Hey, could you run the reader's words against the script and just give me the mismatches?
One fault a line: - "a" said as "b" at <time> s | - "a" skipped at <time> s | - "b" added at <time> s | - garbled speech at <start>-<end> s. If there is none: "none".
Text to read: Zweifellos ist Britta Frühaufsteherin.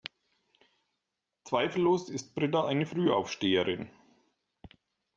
- "eine" added at 2.6 s